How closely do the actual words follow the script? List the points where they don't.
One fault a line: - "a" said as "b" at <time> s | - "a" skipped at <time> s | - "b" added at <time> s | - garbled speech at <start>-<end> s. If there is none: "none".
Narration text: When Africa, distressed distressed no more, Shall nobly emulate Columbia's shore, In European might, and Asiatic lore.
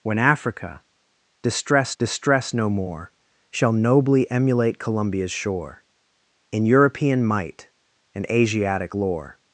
none